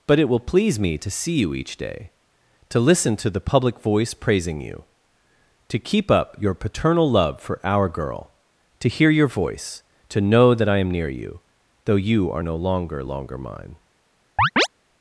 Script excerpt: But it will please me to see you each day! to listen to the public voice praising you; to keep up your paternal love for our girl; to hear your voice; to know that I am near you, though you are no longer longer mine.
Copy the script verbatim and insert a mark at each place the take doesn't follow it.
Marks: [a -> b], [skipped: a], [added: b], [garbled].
But it will please me to see you each day! to listen to the public voice praising you; to keep up your paternal love for our girl; to hear your voice; to know that I am near you, though you are no longer longer mine.